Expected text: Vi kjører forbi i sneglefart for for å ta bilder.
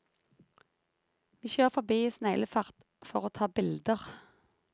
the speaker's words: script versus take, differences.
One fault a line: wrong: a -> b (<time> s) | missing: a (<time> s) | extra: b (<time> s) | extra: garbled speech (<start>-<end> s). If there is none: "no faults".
missing: for (3.3 s)